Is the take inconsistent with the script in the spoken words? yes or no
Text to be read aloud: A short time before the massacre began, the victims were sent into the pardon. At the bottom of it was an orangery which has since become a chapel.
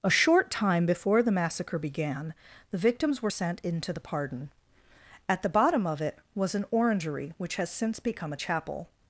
no